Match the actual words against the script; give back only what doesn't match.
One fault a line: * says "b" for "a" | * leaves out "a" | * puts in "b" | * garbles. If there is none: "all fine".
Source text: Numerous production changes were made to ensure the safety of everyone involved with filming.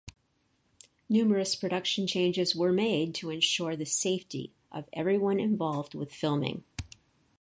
all fine